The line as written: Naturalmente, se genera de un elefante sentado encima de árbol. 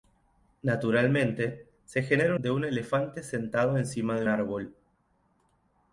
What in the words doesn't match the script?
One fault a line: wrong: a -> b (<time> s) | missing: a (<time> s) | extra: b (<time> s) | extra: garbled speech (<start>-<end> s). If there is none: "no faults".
no faults